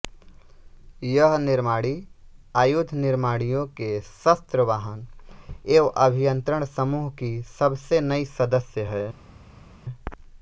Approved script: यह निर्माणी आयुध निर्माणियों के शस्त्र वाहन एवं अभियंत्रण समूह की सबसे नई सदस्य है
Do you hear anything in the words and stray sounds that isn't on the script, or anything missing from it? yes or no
no